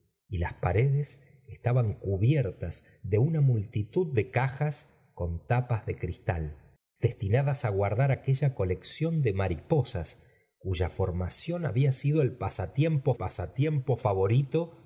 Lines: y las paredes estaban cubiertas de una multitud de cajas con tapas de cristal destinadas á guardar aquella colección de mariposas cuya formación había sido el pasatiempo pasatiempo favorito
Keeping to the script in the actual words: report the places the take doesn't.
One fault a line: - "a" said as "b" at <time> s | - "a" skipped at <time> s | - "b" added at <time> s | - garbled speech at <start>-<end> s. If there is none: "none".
none